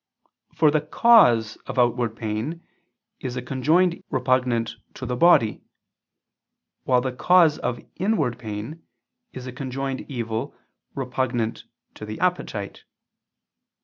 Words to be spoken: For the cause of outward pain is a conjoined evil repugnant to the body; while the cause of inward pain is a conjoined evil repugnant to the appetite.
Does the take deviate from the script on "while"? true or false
false